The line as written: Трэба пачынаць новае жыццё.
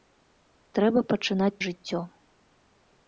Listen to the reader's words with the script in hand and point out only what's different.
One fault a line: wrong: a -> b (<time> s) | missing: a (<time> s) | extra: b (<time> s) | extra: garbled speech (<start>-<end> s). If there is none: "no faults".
missing: новае (1.6 s)